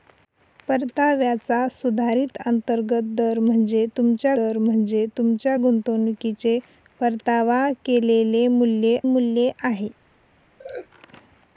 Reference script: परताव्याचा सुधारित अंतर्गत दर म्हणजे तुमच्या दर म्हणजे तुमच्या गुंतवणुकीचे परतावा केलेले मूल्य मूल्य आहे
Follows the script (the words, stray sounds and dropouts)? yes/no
no